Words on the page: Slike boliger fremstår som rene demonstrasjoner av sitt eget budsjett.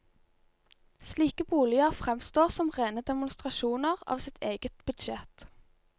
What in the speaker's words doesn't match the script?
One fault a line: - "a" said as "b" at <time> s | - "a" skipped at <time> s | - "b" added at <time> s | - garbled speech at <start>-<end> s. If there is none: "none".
none